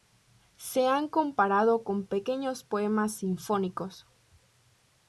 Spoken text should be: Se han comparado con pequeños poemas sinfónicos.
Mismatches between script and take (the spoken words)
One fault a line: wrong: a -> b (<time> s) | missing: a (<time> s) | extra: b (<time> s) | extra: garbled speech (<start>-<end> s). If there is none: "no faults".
no faults